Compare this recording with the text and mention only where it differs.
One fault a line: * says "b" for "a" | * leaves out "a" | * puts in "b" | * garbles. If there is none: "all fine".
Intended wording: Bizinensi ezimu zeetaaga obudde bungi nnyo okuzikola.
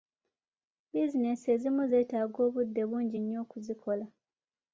all fine